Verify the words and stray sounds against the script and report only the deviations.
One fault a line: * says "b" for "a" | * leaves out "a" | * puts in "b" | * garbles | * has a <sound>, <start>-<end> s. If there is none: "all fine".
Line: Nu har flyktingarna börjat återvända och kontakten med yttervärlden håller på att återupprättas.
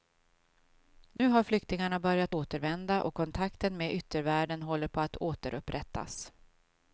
* has a dropout, 1.2-1.2 s